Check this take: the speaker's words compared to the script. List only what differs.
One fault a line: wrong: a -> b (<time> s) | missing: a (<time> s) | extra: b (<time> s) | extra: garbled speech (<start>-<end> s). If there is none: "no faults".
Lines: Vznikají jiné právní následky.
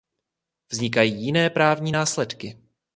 no faults